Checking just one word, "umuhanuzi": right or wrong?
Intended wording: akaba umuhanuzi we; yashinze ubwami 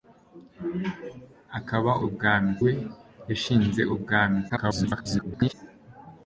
wrong